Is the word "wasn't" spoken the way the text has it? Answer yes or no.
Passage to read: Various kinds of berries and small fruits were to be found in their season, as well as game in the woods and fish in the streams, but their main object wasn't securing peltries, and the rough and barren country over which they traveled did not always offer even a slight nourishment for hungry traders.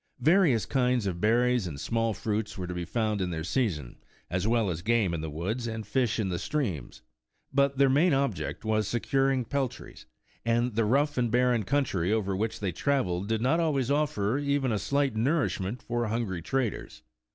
no